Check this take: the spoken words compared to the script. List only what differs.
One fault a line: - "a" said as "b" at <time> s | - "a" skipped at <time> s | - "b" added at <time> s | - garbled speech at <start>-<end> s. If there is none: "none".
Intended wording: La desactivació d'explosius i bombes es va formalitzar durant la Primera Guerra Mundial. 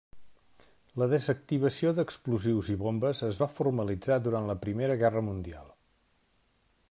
none